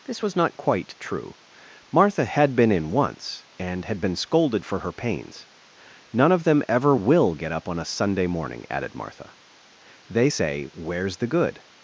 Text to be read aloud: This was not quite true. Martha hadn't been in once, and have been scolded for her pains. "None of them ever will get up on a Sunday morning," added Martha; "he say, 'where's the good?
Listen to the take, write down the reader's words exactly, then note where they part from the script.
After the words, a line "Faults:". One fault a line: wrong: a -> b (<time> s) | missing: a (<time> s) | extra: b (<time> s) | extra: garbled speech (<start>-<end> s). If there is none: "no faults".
This was not quite true. Martha had been in once, and had been scolded for her pains. "None of them ever will get up on a Sunday morning," added Martha; "they say, 'where's the good?
Faults:
wrong: hadn't -> had (2.3 s)
wrong: have -> had (3.9 s)
wrong: he -> they (10.1 s)